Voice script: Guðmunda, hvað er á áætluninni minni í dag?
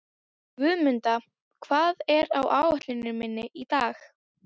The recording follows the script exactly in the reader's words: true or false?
true